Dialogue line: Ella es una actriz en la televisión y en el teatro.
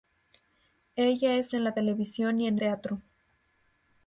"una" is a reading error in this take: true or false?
true